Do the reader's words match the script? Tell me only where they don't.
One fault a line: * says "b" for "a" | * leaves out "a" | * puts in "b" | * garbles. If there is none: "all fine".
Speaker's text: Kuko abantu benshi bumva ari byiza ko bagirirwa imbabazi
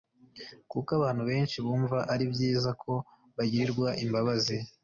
all fine